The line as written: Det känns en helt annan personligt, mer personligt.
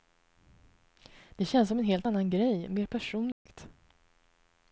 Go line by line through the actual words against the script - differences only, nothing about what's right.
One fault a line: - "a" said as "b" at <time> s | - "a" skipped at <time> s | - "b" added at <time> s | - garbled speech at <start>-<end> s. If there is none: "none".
- "som" added at 1.7 s
- "personligt" said as "grej" at 2.3 s